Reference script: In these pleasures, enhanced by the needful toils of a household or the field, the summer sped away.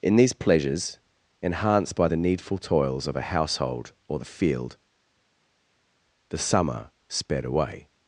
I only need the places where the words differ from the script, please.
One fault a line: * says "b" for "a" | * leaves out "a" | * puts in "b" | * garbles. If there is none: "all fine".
all fine